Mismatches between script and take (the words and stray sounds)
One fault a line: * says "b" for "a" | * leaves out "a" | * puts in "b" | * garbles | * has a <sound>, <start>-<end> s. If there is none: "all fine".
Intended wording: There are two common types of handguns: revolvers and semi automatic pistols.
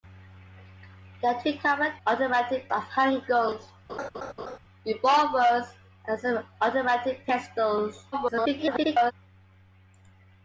* says "automatic" for "types"
* has a laugh, 3.9-4.6 s
* garbles